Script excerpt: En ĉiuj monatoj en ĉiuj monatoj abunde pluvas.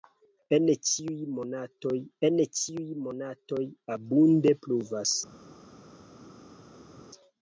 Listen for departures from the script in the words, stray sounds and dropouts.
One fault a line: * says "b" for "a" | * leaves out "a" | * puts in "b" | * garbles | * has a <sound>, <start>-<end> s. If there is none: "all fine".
all fine